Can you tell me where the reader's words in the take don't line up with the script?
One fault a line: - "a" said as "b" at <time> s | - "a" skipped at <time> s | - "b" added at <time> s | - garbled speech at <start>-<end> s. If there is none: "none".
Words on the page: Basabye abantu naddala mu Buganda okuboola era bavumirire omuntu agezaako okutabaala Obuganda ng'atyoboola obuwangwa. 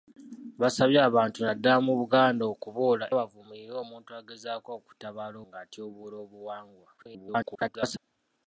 - "era" skipped at 3.0 s
- "Obuganda" skipped at 5.4 s
- garbled speech at 7.0-8.0 s